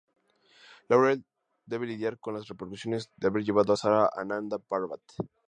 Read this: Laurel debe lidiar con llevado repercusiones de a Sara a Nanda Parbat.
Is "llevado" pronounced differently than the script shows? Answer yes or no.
yes